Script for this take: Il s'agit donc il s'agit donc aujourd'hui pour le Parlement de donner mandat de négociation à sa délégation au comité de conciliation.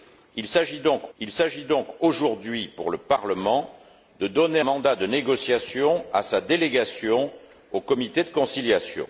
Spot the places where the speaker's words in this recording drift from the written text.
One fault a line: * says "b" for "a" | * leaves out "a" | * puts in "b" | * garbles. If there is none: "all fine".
all fine